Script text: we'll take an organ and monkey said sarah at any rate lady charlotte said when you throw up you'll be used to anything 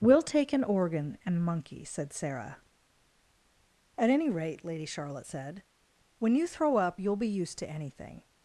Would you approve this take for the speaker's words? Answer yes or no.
yes